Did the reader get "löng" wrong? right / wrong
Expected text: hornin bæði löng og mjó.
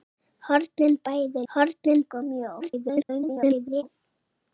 wrong